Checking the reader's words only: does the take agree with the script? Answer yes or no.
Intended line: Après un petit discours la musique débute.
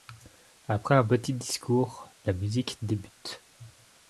yes